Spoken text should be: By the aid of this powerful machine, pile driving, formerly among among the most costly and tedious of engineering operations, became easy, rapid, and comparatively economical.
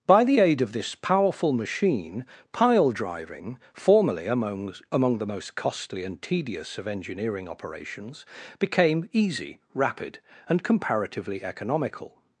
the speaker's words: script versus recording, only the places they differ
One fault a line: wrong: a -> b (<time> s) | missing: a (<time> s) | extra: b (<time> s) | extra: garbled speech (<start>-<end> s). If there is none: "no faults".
no faults